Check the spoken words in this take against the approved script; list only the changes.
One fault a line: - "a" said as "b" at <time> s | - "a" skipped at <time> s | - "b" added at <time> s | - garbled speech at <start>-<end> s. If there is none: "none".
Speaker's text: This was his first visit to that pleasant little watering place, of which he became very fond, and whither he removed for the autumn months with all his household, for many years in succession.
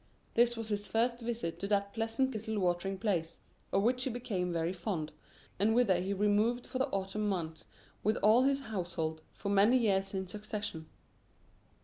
none